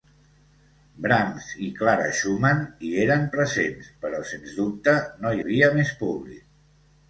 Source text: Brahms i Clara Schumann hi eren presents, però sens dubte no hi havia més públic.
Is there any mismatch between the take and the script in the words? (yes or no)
yes